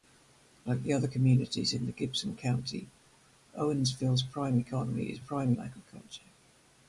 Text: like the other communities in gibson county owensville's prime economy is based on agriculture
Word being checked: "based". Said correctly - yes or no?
no